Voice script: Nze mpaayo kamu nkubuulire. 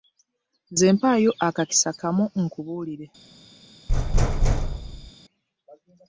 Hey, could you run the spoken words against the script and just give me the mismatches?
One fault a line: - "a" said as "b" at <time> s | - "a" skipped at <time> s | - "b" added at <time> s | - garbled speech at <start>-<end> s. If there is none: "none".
- "akakisa" added at 1.5 s